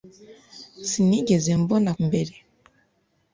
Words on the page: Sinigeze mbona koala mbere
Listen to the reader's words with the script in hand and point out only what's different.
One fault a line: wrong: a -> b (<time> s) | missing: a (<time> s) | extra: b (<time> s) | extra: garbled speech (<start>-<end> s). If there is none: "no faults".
missing: koala (1.9 s)